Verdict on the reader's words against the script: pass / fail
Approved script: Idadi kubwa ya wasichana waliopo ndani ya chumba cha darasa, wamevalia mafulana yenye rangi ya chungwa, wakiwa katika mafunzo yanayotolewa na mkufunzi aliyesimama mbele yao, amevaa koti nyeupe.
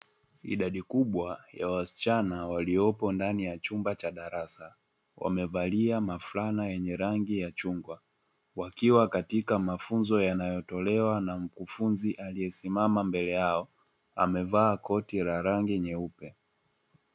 fail